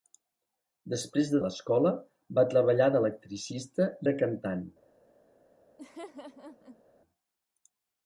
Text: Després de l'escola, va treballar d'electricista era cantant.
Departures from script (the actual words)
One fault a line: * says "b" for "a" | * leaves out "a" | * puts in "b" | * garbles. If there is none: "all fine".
all fine